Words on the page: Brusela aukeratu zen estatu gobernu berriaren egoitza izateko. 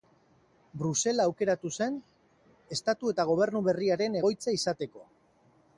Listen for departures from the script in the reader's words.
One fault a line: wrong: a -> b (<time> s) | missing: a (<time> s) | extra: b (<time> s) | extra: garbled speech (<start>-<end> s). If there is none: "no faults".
extra: eta (3.1 s)